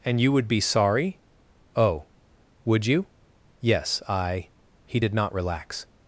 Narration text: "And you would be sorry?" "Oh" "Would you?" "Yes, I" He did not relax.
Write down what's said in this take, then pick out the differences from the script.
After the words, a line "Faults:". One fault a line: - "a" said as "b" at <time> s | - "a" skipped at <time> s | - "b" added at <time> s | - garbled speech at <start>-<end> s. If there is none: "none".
"And you would be sorry?" "Oh" "Would you?" "Yes, I" He did not relax.
Faults:
none